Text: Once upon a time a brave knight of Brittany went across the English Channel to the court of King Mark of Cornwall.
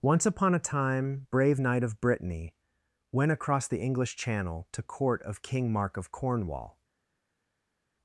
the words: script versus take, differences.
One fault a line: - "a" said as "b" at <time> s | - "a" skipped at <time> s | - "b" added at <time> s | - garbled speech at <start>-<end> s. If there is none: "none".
- "a" skipped at 1.3 s
- "the" skipped at 4.8 s